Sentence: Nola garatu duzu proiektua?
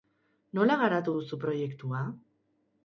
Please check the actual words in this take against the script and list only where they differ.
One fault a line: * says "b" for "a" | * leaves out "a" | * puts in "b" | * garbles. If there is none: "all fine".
all fine